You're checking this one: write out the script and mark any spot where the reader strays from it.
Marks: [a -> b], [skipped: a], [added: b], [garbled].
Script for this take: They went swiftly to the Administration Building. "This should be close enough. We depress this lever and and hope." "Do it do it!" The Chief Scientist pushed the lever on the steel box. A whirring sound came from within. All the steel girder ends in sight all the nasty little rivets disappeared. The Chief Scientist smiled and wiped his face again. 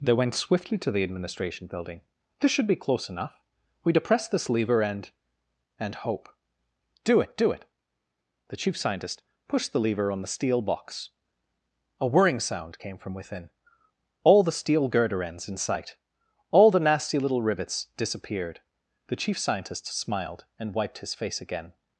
They went swiftly to the Administration Building. "This should be close enough. We depress this lever and and hope." "Do it do it!" The Chief Scientist pushed the lever on the steel box. A whirring sound came from within. All the steel girder ends in sight all the nasty little rivets disappeared. The Chief Scientist smiled and wiped his face again.